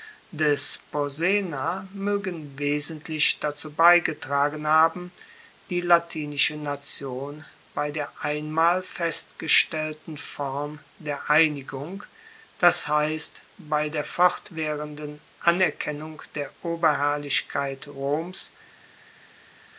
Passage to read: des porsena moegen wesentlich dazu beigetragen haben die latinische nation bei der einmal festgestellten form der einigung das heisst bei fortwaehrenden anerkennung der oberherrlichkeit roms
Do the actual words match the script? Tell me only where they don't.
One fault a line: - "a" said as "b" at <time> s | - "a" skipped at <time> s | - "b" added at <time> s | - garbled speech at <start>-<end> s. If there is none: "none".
- "der" added at 13.9 s